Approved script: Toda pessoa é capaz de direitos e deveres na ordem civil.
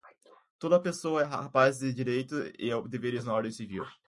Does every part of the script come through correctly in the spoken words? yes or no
yes